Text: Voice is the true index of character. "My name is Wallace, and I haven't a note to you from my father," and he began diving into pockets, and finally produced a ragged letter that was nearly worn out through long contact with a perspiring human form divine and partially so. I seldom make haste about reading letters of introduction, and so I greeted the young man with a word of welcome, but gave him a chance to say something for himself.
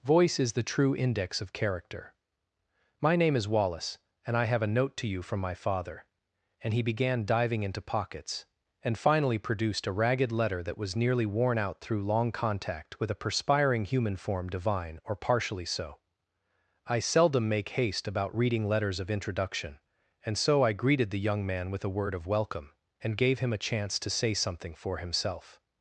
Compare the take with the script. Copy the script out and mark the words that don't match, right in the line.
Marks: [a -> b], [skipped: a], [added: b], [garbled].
Voice is the true index of character. "My name is Wallace, and I [haven't -> have] a note to you from my father," and he began diving into pockets, and finally produced a ragged letter that was nearly worn out through long contact with a perspiring human form divine [and -> or] partially so. I seldom make haste about reading letters of introduction, and so I greeted the young man with a word of welcome, [but -> and] gave him a chance to say something for himself.